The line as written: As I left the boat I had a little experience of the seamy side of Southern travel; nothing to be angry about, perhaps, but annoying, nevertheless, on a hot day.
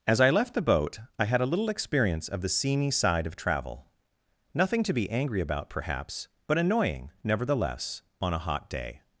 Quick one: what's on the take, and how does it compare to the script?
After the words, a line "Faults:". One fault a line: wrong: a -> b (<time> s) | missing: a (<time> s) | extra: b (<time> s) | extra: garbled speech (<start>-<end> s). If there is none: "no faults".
As I left the boat I had a little experience of the seamy side of travel; nothing to be angry about, perhaps, but annoying, nevertheless, on a hot day.
Faults:
missing: Southern (3.4 s)